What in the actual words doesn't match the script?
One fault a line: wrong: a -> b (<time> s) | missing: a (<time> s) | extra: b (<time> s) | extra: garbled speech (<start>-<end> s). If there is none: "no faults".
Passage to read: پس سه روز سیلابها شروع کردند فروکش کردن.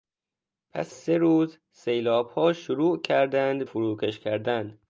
no faults